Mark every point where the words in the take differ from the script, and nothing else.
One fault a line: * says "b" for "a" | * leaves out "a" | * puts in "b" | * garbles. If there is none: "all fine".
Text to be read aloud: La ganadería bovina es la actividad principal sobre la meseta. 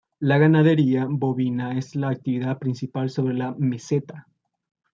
all fine